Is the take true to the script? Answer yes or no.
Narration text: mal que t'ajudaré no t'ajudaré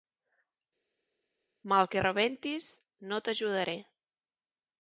no